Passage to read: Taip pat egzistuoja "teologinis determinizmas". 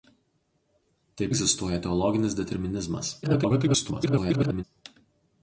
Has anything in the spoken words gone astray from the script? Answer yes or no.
yes